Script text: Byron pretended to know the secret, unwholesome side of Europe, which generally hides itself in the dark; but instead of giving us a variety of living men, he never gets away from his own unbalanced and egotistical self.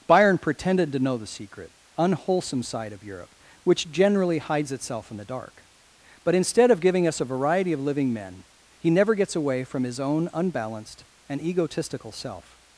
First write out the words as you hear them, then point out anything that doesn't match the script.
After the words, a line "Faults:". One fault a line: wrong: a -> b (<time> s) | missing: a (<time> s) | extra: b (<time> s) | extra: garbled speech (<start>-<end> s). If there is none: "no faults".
Byron pretended to know the secret, unwholesome side of Europe, which generally hides itself in the dark; but instead of giving us a variety of living men, he never gets away from his own unbalanced and egotistical self.
Faults:
no faults